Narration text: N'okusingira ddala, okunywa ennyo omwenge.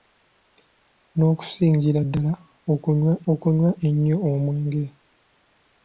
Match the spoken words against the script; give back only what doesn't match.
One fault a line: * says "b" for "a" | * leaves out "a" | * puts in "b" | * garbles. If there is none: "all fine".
* puts in "okunywa"